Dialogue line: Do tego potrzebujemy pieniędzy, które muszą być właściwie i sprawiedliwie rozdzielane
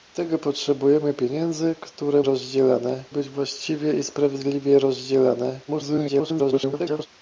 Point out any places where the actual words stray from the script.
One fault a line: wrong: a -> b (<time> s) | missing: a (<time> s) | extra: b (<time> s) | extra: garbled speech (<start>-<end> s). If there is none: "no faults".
wrong: muszą -> rozdzielane (2.2 s)
extra: garbled speech (5.7-7.1 s)